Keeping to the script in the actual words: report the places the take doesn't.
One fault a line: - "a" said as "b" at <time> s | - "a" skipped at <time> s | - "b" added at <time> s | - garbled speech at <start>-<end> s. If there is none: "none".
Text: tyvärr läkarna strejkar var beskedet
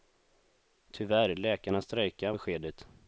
- "var" skipped at 2.3 s